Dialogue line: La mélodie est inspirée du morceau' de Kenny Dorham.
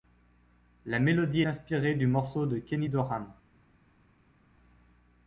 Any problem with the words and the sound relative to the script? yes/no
yes